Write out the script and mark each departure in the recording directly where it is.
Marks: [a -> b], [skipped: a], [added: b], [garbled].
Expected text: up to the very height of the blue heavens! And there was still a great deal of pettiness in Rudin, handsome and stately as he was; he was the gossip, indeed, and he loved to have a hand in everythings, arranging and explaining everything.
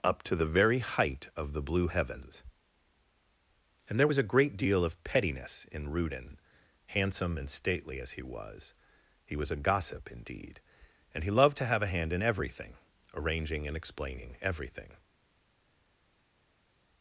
up to the very height of the blue heavens! And there was [skipped: still] a great deal of pettiness in Rudin, handsome and stately as he was; he was [the -> a] gossip, indeed, and he loved to have a hand in [everythings, -> everything] arranging and explaining everything.